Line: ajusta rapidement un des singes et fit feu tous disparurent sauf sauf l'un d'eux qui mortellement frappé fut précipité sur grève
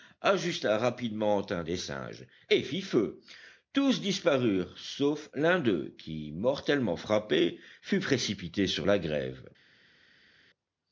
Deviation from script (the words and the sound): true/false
true